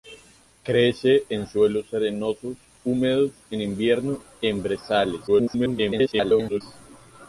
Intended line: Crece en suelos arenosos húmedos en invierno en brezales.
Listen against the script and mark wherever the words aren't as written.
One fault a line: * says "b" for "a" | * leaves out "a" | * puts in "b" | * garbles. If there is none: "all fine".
* garbles